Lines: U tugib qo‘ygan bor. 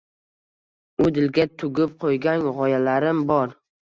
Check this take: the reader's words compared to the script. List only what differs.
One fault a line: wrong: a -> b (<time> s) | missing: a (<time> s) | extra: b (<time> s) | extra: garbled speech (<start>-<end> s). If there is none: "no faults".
extra: dilga (1.2 s)
extra: g‘oyalarim (2.6 s)